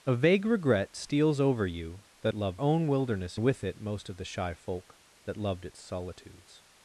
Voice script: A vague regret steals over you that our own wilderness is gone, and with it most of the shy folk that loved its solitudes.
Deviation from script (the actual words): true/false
true